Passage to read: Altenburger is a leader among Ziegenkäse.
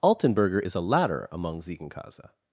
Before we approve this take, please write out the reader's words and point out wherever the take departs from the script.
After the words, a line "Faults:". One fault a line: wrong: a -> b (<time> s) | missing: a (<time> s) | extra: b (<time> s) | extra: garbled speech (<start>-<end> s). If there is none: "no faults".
Altenburger is a ladder among Ziegenkäse.
Faults:
wrong: leader -> ladder (0.8 s)